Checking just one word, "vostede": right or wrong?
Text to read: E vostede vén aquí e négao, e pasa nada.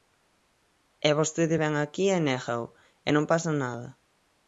right